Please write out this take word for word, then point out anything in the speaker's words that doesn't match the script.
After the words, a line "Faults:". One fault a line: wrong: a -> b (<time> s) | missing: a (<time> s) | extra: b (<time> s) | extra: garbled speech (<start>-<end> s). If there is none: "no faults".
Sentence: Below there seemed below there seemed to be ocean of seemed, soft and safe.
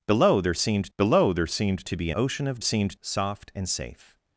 Below there seemed below there seemed to be ocean of seemed, soft and safe.
Faults:
no faults